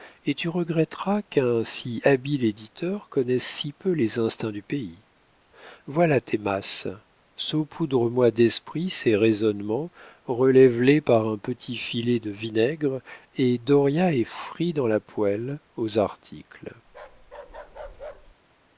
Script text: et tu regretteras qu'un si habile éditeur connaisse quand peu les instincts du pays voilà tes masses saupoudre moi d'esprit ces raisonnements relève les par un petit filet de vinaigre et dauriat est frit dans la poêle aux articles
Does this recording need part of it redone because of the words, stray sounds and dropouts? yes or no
yes